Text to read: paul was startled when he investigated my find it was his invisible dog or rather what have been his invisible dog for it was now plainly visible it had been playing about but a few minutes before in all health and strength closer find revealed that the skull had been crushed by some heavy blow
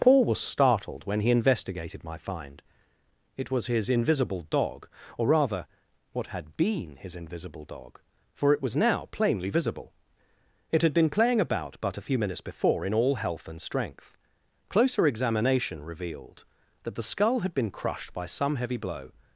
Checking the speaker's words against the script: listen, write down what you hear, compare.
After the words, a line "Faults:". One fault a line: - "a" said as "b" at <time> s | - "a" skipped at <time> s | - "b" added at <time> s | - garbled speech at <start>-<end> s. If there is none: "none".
paul was startled when he investigated my find it was his invisible dog or rather what had been his invisible dog for it was now plainly visible it had been playing about but a few minutes before in all health and strength closer examination revealed that the skull had been crushed by some heavy blow
Faults:
- "have" said as "had" at 6.3 s
- "find" said as "examination" at 15.1 s